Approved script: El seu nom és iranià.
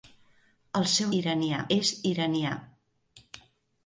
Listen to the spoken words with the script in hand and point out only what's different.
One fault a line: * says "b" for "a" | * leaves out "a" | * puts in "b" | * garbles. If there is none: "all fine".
* says "iranià" for "nom"